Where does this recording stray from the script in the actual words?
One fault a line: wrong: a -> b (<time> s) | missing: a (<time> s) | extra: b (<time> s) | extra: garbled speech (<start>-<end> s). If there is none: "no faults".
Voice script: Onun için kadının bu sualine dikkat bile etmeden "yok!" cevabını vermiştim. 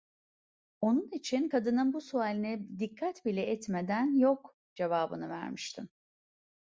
no faults